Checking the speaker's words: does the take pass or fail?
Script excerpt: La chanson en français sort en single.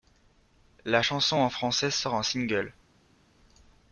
pass